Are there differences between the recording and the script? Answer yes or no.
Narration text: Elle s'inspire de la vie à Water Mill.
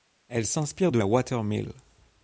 yes